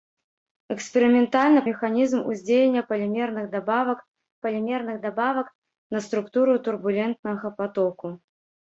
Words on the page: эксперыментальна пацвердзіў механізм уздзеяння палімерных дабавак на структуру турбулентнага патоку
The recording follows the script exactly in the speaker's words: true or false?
false